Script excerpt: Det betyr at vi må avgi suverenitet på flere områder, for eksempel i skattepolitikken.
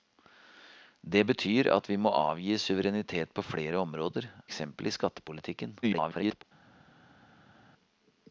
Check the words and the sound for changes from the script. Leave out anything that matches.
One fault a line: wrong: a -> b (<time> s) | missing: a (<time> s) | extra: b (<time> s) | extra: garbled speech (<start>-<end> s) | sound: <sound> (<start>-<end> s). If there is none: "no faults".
missing: for (4.3 s)
extra: garbled speech (5.8-6.4 s)